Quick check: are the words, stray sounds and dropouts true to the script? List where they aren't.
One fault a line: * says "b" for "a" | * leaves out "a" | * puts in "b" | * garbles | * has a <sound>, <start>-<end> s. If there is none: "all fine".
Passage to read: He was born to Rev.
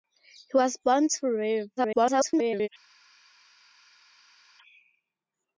* garbles